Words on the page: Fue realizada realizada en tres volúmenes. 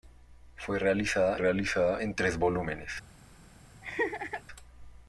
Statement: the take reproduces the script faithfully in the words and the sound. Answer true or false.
false